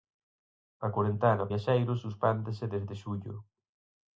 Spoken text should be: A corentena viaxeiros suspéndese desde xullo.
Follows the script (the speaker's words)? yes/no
yes